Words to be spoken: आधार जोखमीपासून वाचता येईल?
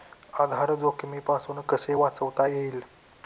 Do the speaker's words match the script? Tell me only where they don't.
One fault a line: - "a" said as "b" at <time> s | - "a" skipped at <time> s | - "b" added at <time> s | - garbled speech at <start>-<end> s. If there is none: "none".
- "कसे" added at 1.6 s